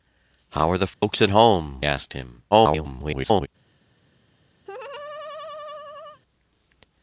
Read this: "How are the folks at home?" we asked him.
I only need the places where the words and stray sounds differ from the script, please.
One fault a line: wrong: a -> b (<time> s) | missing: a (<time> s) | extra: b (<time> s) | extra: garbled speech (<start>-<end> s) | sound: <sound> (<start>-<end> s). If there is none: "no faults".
sound: dropout (0.9-1.0 s)
missing: we (1.9 s)
extra: garbled speech (2.5-3.5 s)
sound: laugh (4.6-6.2 s)